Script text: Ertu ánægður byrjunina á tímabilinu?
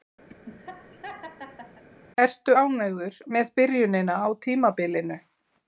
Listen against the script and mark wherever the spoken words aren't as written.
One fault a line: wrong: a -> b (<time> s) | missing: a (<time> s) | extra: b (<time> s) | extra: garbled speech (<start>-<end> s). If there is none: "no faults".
extra: með (3.4 s)